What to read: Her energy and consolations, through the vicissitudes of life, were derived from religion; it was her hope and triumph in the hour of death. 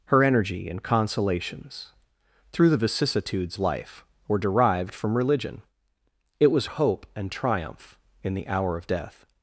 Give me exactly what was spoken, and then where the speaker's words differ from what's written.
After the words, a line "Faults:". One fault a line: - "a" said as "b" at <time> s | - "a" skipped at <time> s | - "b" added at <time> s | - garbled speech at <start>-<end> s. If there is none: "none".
Her energy and consolations, through the vicissitudes life, were derived from religion; it was hope and triumph in the hour of death.
Faults:
- "of" skipped at 3.6 s
- "her" skipped at 6.7 s